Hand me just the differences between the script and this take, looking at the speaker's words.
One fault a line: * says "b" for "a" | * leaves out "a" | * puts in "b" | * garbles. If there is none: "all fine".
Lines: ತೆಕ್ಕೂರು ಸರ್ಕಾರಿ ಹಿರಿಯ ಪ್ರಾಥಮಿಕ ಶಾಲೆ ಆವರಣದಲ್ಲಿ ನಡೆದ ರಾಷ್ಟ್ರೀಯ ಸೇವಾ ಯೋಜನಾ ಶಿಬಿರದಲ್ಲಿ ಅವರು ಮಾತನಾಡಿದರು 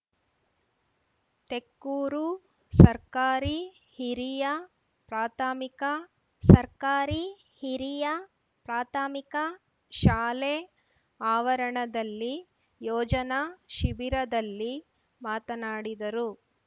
* says "ಸರ್ಕಾರಿ ಹಿರಿಯ ಪ್ರಾಥಮಿಕ ಶಾಲೆ ಆವರಣದಲ್ಲಿ" for "ಶಾಲೆ ಆವರಣದಲ್ಲಿ ನಡೆದ ರಾಷ್ಟ್ರೀಯ ಸೇವಾ"
* leaves out "ಅವರು"